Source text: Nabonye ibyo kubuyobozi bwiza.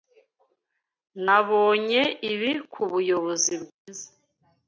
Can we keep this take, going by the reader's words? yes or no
no